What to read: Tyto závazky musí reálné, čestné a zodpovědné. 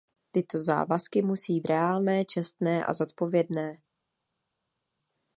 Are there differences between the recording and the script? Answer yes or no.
no